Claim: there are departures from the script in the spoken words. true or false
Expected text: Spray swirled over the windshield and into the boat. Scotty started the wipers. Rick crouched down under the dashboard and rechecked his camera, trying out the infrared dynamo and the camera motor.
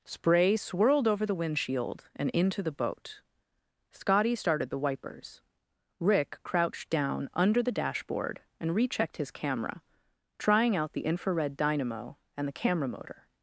false